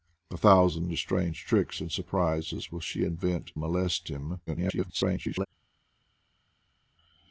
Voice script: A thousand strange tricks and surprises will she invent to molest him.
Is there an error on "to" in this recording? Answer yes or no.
yes